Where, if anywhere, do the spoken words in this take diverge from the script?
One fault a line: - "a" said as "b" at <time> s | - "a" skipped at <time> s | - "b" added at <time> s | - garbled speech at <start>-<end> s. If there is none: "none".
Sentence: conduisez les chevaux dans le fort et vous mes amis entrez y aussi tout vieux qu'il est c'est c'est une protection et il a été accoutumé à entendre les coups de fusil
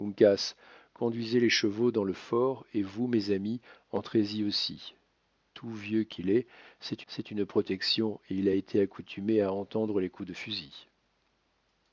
none